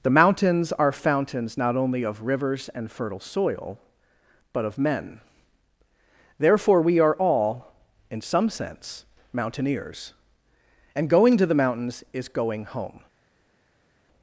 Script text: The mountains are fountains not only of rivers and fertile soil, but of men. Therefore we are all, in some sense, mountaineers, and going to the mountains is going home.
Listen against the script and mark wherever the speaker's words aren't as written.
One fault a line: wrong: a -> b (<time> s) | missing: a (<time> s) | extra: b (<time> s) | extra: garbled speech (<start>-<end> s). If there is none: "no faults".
no faults